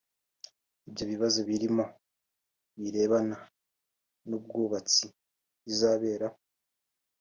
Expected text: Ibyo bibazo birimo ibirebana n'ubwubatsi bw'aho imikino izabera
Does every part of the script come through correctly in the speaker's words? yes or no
no